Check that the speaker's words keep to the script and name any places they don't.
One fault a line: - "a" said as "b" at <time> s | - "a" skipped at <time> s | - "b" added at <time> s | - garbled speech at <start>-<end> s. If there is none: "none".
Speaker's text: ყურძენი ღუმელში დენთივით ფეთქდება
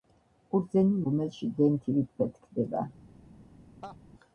none